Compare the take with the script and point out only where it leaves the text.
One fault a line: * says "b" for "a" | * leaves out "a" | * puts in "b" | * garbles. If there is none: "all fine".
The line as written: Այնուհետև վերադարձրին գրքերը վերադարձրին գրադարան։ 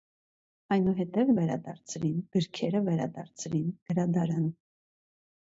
all fine